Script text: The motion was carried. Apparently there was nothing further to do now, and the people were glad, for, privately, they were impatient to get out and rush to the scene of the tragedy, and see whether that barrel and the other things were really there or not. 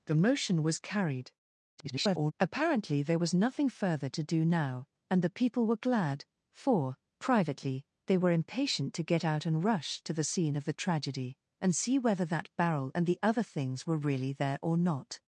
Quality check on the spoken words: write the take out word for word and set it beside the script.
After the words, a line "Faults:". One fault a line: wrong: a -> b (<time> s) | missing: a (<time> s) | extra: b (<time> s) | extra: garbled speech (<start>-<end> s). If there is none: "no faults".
The motion was carried. [garbled] Apparently there was nothing further to do now, and the people were glad, for, privately, they were impatient to get out and rush to the scene of the tragedy, and see whether that barrel and the other things were really there or not.
Faults:
extra: garbled speech (1.8-2.3 s)